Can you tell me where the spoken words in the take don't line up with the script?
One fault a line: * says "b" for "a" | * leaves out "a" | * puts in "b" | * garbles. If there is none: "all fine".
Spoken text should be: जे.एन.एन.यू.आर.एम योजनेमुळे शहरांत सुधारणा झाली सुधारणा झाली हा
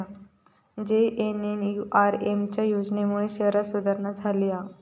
* puts in "च्या"
* leaves out "सुधारणा झाली"